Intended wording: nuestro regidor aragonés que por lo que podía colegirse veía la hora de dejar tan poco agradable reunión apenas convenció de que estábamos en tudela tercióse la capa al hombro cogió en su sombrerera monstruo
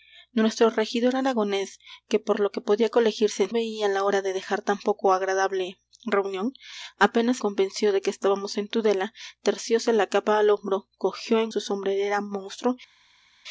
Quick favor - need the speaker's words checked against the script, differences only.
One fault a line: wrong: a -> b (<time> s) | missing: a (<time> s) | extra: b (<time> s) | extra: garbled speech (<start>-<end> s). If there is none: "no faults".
no faults